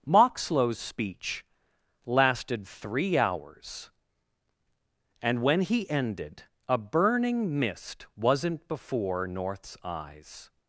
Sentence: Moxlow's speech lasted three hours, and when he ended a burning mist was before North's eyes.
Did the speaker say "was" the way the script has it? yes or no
no